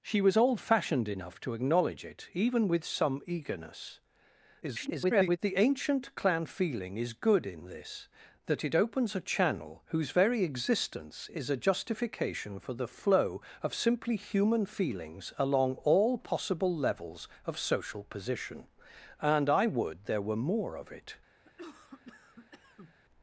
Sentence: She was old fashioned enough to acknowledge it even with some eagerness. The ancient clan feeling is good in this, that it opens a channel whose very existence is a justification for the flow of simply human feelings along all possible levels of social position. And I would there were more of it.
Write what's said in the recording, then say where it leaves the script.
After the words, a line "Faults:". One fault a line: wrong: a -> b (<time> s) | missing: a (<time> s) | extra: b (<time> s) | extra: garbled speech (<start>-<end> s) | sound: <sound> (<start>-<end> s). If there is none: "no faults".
She was old fashioned enough to acknowledge it even with some eagerness. [garbled] The ancient clan feeling is good in this, that it opens a channel whose very existence is a justification for the flow of simply human feelings along all possible levels of social position. And I would there were more of it.
Faults:
extra: garbled speech (4.6-5.4 s)
sound: cough (21.4-23.0 s)